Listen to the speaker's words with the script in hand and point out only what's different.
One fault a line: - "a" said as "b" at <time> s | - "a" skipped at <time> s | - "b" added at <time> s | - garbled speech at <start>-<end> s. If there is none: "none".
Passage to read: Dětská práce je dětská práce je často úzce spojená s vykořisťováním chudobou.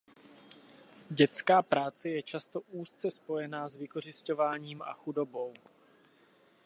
- "dětská práce je" skipped at 2.2 s
- "a" added at 4.8 s